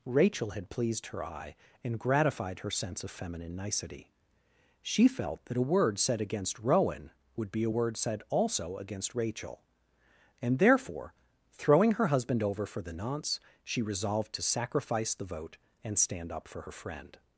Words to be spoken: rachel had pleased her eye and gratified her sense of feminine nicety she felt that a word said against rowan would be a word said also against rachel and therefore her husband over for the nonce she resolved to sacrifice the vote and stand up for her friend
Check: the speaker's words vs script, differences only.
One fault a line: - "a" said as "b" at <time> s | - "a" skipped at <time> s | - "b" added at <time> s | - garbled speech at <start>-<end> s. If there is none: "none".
- "throwing" added at 11.5 s